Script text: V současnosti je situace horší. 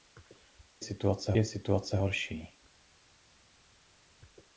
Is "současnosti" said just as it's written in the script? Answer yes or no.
no